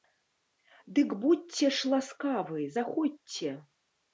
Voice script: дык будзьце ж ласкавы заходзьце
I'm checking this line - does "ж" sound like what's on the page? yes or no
yes